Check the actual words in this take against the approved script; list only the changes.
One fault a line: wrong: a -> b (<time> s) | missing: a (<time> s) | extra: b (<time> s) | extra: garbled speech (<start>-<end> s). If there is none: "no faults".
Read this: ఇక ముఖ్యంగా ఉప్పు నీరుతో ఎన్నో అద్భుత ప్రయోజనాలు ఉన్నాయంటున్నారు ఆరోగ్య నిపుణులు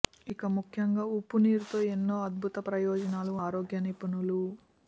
missing: ఉన్నాయంటున్నారు (3.3 s)